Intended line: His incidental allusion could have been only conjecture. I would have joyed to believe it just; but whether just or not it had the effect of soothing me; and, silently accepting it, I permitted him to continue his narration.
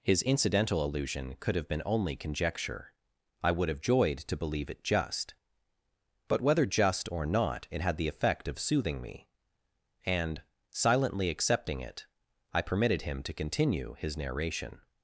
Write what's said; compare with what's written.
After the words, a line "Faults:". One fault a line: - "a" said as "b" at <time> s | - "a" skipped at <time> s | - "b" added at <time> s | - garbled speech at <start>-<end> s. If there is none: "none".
His incidental allusion could have been only conjecture. I would have joyed to believe it just; but whether just or not it had the effect of soothing me; and, silently accepting it, I permitted him to continue his narration.
Faults:
none